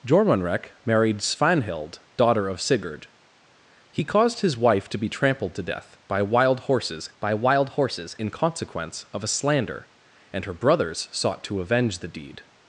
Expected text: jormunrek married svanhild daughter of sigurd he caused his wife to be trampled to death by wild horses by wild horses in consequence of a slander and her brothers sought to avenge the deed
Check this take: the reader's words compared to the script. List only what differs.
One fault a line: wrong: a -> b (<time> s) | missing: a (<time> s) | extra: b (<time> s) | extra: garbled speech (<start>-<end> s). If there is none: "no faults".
no faults